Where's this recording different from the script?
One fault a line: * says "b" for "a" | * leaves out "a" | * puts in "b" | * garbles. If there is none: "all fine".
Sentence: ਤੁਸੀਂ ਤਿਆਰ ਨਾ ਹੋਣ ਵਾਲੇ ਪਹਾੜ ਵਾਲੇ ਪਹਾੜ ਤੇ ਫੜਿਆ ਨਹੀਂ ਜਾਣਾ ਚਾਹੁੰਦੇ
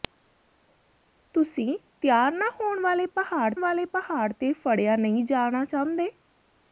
all fine